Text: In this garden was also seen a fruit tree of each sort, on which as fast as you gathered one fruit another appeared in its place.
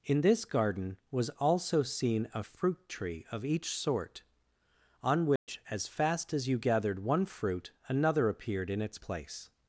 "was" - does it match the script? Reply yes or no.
yes